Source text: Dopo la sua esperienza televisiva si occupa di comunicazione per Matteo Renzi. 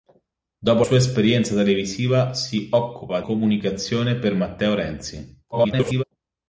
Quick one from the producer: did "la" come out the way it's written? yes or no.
no